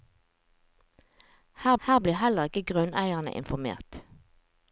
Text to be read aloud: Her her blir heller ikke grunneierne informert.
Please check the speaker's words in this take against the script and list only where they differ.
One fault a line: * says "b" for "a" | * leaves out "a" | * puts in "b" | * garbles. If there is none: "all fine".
all fine